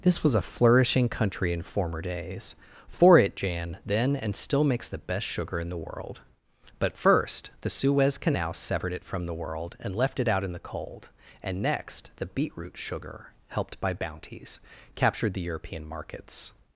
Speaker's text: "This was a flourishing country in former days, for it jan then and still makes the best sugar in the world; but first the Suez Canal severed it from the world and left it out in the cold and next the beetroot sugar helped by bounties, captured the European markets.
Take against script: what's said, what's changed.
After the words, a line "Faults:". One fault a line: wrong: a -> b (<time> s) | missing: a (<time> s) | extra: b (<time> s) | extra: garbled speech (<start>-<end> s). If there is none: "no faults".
"This was a flourishing country in former days, for it jan then and still makes the best sugar in the world; but first the Suez Canal severed it from the world and left it out in the cold and next the beetroot sugar helped by bounties, captured the European markets.
Faults:
no faults